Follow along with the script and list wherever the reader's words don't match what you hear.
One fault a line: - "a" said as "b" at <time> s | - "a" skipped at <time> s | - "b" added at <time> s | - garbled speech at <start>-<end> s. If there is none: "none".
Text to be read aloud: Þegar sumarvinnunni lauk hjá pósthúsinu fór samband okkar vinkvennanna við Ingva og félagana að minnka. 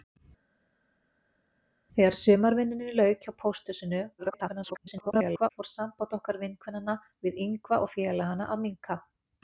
- garbled speech at 4.2-5.5 s